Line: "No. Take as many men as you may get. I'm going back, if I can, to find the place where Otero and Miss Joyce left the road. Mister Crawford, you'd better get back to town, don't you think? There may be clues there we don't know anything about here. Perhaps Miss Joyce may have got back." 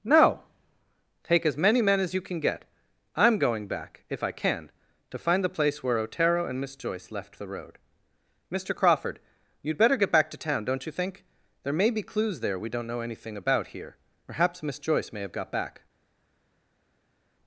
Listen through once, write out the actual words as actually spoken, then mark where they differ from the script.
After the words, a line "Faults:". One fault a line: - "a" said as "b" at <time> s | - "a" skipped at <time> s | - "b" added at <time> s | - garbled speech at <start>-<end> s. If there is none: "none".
"No. Take as many men as you can get. I'm going back, if I can, to find the place where Otero and Miss Joyce left the road. Mister Crawford, you'd better get back to town, don't you think? There may be clues there we don't know anything about here. Perhaps Miss Joyce may have got back."
Faults:
- "may" said as "can" at 2.2 s